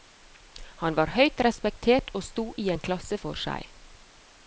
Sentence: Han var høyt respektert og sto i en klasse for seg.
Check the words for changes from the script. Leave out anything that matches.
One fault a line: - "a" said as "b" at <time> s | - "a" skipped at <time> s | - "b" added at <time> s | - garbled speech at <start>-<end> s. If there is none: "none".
none